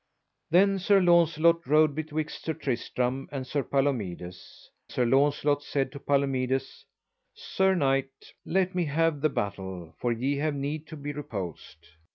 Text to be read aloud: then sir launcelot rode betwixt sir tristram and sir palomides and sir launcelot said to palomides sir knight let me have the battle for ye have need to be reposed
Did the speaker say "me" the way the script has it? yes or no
yes